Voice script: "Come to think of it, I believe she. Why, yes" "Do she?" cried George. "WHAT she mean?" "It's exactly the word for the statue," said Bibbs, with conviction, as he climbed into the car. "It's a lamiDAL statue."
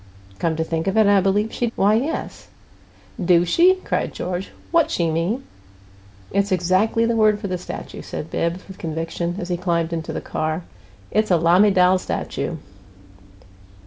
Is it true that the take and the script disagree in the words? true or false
false